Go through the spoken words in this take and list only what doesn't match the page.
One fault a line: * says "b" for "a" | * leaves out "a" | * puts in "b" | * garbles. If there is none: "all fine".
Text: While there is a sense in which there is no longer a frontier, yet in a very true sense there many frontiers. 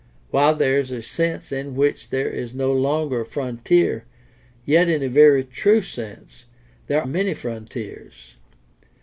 all fine